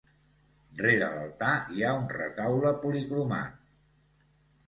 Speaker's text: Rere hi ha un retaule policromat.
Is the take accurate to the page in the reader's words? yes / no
no